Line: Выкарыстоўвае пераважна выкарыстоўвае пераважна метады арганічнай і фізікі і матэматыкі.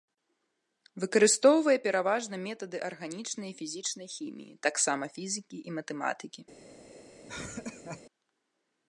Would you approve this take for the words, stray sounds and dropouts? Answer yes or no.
no